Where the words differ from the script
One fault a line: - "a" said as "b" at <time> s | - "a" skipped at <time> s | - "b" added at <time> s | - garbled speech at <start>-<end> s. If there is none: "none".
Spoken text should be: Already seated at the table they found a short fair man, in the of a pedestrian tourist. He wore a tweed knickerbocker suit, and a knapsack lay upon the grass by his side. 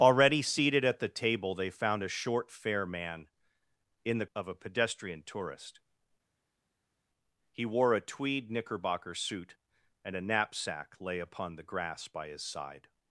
none